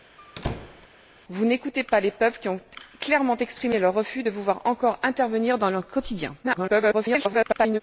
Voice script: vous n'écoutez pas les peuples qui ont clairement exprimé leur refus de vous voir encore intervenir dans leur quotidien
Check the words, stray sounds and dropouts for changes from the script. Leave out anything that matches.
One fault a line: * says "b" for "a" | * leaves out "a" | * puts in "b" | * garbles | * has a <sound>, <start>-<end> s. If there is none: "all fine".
* has a squeak, 0.2-0.9 s
* garbles